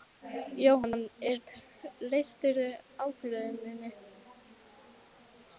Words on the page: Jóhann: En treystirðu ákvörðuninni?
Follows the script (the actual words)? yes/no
yes